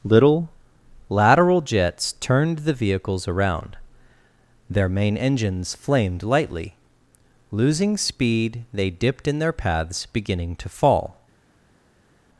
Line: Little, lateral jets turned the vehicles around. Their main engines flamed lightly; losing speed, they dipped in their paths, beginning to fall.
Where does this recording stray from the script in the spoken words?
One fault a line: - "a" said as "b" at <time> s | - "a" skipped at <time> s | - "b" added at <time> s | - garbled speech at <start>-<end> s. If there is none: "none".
none